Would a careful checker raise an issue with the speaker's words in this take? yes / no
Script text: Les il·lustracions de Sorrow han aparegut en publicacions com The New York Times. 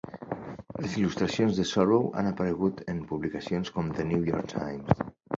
no